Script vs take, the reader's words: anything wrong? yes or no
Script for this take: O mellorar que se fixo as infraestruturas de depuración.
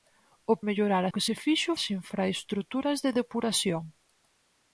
no